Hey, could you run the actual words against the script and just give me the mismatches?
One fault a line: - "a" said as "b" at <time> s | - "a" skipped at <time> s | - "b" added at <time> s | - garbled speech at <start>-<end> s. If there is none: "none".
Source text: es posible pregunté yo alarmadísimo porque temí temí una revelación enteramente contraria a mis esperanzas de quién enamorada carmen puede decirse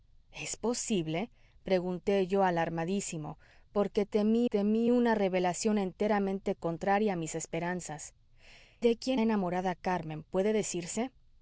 none